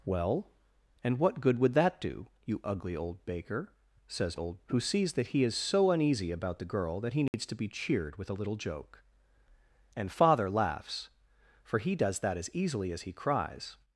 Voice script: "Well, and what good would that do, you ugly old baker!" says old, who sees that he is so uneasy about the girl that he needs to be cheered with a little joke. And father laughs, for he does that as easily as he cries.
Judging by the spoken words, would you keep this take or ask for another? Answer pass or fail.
pass